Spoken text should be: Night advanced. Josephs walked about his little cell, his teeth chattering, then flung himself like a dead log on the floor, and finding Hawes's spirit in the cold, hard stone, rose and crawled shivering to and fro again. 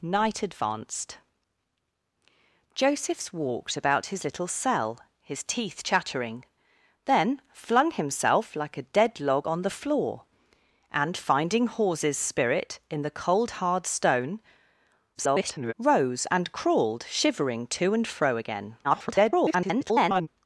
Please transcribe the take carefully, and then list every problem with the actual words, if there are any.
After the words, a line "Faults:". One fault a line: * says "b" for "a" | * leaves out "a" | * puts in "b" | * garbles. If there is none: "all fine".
Night advanced. Josephs walked about his little cell, his teeth chattering, then flung himself like a dead log on the floor, and finding Hawes's spirit in the cold, hard stone, [garbled] rose and crawled shivering to and fro again. [garbled]
Faults:
* garbles
* garbles